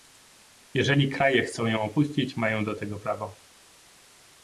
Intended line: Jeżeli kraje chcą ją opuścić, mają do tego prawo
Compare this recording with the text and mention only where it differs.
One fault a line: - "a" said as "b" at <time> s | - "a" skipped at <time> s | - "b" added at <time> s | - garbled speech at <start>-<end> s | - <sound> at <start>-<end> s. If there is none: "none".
none